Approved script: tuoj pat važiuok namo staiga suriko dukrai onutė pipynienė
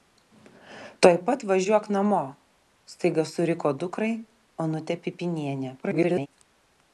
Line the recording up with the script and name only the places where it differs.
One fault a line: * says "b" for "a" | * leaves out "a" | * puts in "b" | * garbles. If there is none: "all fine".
* garbles